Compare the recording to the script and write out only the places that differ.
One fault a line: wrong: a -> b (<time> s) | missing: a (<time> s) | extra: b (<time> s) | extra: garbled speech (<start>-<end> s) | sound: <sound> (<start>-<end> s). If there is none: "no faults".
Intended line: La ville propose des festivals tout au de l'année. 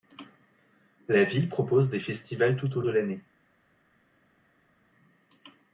no faults